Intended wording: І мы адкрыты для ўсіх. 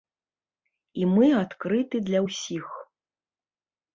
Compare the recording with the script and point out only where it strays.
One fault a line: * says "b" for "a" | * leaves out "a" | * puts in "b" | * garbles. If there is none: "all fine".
all fine